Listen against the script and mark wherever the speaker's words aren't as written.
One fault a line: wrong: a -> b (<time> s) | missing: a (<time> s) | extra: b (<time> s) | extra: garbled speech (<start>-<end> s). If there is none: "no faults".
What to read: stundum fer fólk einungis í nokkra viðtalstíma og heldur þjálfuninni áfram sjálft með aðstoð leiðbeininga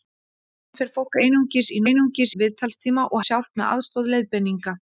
wrong: nokkra -> einungis (1.9 s)
missing: heldur þjálfuninni áfram (3.2 s)